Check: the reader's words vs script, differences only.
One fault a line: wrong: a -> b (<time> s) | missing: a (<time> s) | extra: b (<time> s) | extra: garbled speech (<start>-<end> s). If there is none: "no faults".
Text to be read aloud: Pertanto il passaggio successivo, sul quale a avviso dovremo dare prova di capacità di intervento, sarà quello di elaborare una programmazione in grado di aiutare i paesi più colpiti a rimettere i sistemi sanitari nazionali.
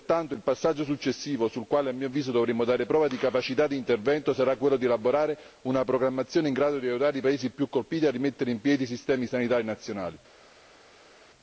extra: mio (1.9 s)
extra: in piedi (8.5 s)